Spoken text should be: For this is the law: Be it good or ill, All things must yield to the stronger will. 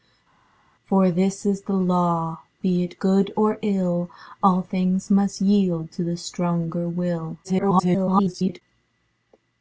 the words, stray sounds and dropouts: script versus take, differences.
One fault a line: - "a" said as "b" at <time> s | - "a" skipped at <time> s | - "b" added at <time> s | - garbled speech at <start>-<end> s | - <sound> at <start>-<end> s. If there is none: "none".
- garbled speech at 7.4-8.6 s